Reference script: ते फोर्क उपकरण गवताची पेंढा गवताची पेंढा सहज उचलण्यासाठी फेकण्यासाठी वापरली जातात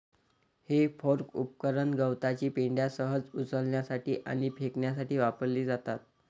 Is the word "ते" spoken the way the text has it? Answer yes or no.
no